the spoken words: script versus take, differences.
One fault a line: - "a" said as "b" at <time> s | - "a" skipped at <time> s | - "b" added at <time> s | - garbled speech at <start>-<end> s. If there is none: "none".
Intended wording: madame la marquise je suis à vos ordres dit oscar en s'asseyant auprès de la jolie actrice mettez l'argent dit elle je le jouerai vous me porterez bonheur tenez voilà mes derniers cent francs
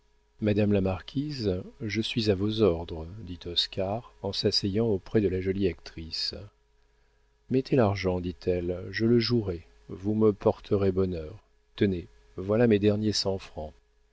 none